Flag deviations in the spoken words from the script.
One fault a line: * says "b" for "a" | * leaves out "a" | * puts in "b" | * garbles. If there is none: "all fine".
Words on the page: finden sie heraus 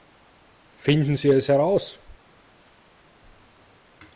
* puts in "es"